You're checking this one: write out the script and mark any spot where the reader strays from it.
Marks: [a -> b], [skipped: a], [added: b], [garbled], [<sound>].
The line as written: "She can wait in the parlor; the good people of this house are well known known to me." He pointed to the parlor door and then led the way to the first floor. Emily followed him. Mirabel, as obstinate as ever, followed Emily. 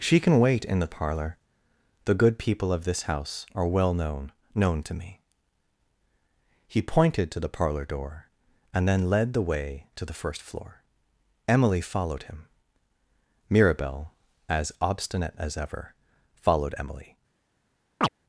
"She can wait in the parlor; the good people of this house are well known known to me." He pointed to the parlor door and then led the way to the first floor. Emily followed him. Mirabel, as obstinate as ever, followed Emily. [chirp]